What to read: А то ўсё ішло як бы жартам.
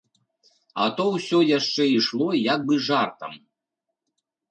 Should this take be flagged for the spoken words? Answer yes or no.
yes